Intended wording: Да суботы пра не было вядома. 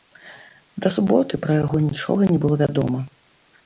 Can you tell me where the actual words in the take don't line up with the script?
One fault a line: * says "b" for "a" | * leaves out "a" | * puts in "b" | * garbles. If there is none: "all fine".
* puts in "яго нічога"